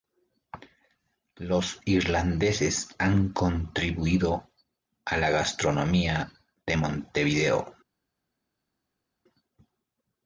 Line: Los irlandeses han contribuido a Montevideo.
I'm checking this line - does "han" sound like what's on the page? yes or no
yes